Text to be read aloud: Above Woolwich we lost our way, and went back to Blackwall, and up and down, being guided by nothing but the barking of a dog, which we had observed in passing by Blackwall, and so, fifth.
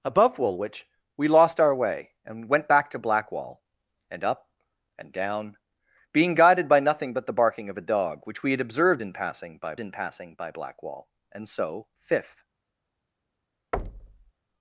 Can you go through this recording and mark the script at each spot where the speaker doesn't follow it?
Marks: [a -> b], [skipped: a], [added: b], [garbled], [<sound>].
Above Woolwich we lost our way, and went back to Blackwall, and up and down, being guided by nothing but the barking of a dog, which we had observed in passing by [added: in passing by] Blackwall, and so, fifth. [thud]